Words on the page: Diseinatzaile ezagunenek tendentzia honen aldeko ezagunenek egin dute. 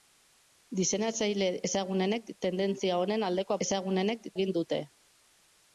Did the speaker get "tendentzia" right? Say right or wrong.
right